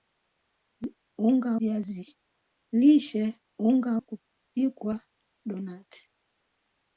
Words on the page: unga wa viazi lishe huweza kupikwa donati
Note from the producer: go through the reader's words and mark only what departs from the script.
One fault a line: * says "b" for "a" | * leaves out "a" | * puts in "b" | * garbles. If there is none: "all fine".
* leaves out "wa"
* says "unga" for "huweza"